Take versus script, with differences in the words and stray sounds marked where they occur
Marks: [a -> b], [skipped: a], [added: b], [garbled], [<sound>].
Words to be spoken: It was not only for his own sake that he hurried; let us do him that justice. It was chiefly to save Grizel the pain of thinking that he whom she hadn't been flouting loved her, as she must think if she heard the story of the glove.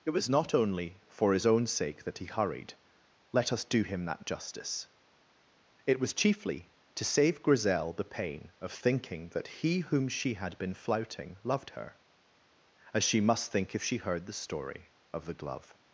It was not only for his own sake that he hurried; let us do him that justice. It was chiefly to save Grizel the pain of thinking that he whom she [hadn't -> had] been flouting loved her, as she must think if she heard the story of the glove.